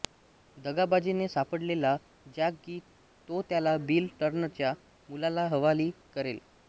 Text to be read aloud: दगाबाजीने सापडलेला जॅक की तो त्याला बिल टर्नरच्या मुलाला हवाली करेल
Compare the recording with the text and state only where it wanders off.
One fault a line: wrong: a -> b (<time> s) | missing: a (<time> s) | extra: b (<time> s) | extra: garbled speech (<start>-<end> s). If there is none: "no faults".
no faults